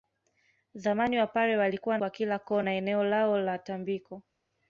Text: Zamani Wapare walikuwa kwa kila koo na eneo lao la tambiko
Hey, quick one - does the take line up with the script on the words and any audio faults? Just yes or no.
yes